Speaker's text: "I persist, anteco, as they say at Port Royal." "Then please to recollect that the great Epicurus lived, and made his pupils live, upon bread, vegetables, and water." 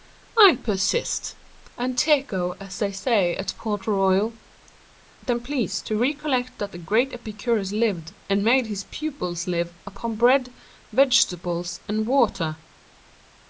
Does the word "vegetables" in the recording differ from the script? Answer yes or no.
no